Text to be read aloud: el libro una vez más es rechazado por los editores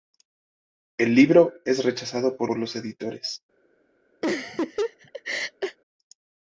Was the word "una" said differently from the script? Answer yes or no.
yes